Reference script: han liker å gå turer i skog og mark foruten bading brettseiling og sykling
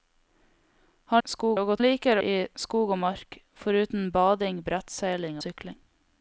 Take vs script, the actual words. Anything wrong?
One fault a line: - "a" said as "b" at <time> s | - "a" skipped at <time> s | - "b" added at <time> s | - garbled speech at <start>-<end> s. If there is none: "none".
- "liker" said as "skog" at 1.3 s
- "turer" said as "liker" at 1.8 s
- "og" skipped at 5.4 s